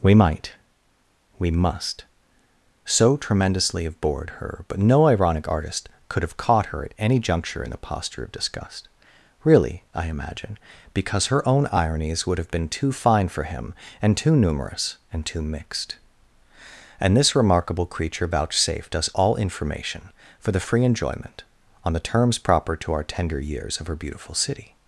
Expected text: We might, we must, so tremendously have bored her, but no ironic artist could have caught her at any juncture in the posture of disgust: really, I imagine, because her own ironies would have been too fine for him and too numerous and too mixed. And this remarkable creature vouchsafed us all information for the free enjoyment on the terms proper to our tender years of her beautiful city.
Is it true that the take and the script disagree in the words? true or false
false